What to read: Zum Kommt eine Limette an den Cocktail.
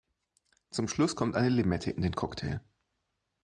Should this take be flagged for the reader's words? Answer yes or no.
yes